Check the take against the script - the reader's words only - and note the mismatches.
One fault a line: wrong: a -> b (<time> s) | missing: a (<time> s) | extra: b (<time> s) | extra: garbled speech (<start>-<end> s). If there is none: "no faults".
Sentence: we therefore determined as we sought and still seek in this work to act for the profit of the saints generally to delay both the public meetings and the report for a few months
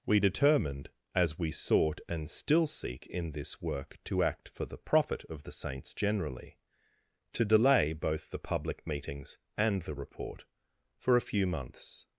missing: therefore (0.2 s)